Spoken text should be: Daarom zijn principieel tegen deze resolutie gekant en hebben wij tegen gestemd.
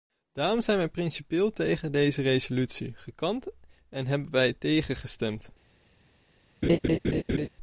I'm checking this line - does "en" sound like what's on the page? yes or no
yes